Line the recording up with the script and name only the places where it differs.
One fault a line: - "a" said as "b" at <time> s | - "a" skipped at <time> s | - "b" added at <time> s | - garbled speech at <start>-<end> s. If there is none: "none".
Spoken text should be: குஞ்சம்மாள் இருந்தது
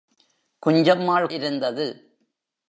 none